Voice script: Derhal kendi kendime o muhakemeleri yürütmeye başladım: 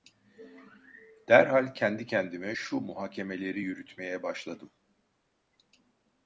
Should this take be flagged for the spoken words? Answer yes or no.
yes